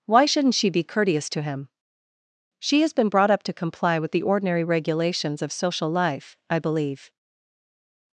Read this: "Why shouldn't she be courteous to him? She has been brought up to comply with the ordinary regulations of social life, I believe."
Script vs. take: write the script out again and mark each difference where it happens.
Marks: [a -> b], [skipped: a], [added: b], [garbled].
"Why shouldn't she be courteous to him? She has been brought up to comply with the ordinary regulations of social life, I believe."